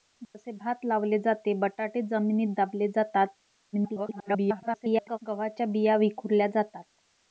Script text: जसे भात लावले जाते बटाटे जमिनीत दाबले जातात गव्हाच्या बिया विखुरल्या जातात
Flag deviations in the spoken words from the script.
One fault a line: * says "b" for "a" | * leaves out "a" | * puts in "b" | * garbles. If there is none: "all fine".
* garbles